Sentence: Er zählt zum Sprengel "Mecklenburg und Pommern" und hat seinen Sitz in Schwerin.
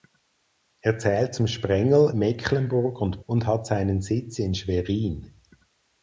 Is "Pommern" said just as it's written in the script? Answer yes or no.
no